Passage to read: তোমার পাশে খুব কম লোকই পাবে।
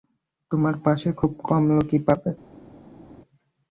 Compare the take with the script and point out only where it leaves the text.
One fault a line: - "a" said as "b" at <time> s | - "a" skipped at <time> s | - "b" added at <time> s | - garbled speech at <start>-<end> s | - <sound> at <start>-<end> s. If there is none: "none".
none